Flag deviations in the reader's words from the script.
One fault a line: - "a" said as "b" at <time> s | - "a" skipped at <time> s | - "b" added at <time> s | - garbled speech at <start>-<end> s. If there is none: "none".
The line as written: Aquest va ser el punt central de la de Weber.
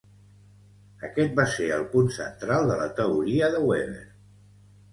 - "teoria" added at 3.0 s